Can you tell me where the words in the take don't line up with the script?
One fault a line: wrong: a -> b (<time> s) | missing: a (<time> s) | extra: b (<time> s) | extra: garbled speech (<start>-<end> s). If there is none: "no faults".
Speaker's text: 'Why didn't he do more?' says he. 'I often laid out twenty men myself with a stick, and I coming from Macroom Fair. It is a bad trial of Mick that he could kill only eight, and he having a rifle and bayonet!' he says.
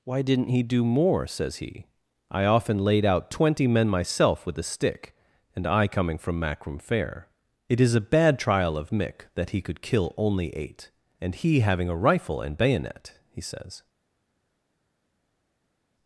no faults